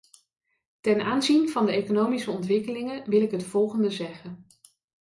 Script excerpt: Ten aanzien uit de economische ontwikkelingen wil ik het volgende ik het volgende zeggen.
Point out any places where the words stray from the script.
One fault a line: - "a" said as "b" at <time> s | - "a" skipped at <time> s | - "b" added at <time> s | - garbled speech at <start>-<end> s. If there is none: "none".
- "uit" said as "van" at 1.5 s
- "ik het volgende" skipped at 3.9 s